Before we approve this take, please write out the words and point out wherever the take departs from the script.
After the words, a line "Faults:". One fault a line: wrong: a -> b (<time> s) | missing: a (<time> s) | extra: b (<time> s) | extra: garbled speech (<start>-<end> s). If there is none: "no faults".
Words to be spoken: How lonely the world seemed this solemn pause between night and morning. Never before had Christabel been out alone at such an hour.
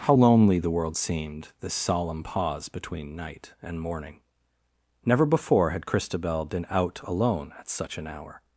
How lonely the world seemed this solemn pause between night and morning. Never before had Christabel been out alone at such an hour.
Faults:
no faults